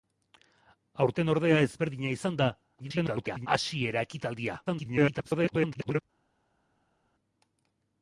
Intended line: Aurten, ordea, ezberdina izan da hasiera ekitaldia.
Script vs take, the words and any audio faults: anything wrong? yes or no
yes